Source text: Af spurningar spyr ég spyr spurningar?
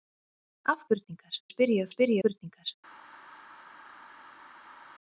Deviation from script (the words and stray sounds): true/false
false